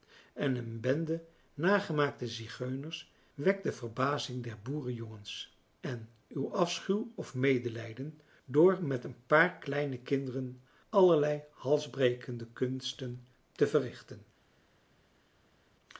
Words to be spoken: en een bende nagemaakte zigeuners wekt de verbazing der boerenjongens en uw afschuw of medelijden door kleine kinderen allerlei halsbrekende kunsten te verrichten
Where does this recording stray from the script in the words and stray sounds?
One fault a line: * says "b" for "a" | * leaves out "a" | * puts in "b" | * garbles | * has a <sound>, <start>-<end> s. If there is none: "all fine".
* puts in "met een paar"